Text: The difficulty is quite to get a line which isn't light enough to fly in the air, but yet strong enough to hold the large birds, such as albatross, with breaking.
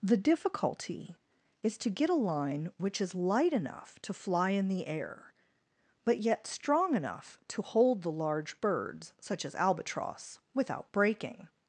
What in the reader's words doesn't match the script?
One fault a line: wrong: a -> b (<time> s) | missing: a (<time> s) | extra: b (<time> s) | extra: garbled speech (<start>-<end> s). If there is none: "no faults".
missing: quite (1.8 s)
wrong: isn't -> is (3.0 s)
wrong: with -> without (10.5 s)